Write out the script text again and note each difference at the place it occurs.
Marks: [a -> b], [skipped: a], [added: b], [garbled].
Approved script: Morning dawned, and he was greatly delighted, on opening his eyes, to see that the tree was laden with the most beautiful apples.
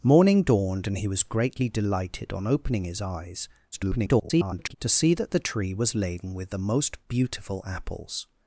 Morning dawned, and he was greatly delighted, on opening his eyes, [garbled] to see that the tree was laden with the most beautiful apples.